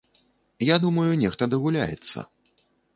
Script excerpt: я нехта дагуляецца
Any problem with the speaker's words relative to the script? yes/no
yes